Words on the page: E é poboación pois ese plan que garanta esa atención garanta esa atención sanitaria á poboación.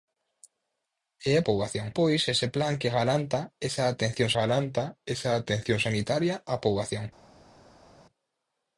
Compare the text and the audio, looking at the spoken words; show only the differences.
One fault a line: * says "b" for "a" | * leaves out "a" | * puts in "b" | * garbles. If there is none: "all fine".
all fine